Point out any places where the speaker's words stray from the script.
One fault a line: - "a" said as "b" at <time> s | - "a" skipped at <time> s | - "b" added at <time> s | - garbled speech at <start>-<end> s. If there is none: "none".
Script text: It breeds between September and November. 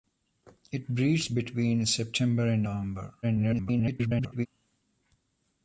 - garbled speech at 3.2-4.5 s